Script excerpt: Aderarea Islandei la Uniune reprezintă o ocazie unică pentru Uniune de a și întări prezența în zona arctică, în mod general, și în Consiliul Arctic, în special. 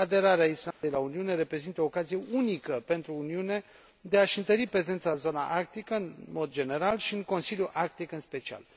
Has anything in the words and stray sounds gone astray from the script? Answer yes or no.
yes